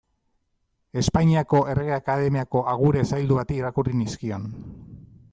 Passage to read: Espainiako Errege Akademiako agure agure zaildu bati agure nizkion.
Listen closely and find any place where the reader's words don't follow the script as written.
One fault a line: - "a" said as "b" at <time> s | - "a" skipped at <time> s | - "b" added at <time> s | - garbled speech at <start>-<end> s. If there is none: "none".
- "agure" skipped at 3.0 s
- "agure" said as "irakurri" at 3.6 s